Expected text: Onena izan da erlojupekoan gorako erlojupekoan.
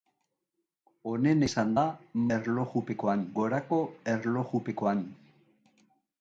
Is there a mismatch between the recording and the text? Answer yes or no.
no